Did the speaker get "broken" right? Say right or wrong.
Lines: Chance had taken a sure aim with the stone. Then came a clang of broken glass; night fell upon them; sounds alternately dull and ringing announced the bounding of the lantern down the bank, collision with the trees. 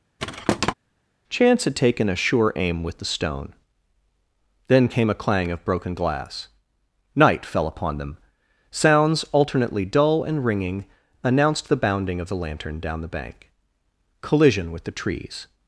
right